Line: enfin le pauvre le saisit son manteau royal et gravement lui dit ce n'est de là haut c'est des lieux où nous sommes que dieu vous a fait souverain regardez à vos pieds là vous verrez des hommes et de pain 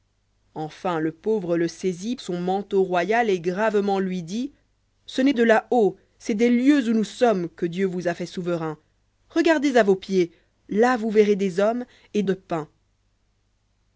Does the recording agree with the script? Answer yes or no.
yes